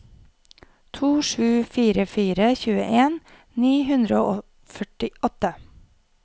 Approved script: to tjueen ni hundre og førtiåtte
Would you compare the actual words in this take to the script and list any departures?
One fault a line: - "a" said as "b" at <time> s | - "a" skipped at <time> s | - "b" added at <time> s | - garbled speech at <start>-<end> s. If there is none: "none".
- "sju fire fire" added at 1.3 s